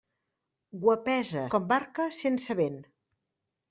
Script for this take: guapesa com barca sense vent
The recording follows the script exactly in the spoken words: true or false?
true